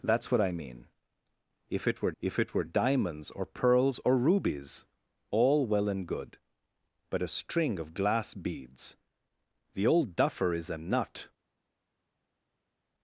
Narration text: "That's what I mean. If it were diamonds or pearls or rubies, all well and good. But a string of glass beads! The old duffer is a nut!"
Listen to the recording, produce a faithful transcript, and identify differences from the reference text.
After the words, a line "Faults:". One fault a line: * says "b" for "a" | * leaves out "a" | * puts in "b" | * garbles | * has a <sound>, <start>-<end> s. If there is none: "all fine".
"That's what I mean. If it were if it were diamonds or pearls or rubies, all well and good. But a string of glass beads! The old duffer is a nut!"
Faults:
* puts in "if it were"